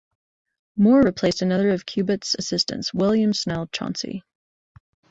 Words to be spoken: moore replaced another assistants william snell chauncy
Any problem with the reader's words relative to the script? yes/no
yes